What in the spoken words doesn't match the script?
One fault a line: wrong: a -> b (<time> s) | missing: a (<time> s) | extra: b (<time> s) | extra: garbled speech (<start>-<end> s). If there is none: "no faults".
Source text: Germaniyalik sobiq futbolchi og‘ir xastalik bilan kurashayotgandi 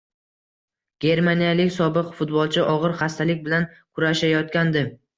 no faults